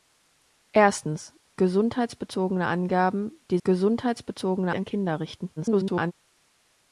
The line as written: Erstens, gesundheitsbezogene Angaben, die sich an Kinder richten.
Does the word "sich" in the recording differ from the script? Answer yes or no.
yes